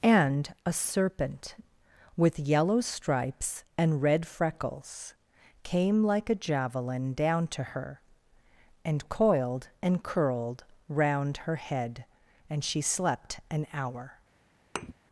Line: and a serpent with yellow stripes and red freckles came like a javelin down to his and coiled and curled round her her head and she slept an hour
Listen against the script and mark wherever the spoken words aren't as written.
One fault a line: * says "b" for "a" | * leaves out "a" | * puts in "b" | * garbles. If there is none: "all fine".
* says "her" for "his"
* leaves out "her"